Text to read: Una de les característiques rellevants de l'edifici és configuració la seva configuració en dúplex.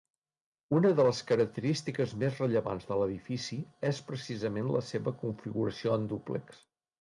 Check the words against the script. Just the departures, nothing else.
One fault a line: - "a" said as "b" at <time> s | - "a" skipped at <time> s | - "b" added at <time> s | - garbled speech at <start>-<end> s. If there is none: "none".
- "més" added at 2.2 s
- "configuració" said as "precisament" at 4.1 s